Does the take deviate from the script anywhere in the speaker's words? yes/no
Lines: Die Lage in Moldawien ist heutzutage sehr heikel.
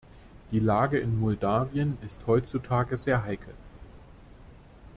no